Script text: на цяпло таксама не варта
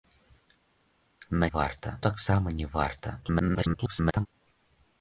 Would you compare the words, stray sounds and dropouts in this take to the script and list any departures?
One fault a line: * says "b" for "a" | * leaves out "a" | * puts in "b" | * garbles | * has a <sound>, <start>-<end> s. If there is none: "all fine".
* says "варта" for "цяпло"
* garbles